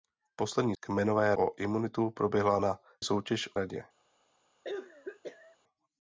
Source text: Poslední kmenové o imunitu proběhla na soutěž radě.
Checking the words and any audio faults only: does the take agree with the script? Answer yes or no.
no